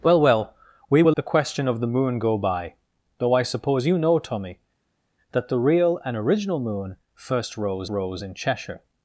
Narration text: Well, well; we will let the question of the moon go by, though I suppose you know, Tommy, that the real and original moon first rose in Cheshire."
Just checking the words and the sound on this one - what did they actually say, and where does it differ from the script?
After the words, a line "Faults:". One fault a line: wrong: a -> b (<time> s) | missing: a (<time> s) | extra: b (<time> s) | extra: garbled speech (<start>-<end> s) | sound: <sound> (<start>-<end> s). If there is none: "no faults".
Well, well; we will the question of the moon go by, though I suppose you know, Tommy, that the real and original moon first rose rose in Cheshire."
Faults:
missing: let (1.2 s)
extra: rose (7.9 s)